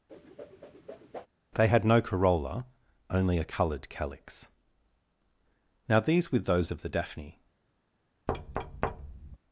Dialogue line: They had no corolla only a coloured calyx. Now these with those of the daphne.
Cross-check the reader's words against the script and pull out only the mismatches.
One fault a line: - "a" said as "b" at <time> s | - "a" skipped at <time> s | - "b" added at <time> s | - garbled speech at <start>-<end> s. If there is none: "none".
none